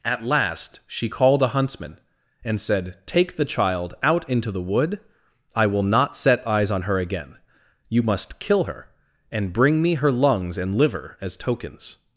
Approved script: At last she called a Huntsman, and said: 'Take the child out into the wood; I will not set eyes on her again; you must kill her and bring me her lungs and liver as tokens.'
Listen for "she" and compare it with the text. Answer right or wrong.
right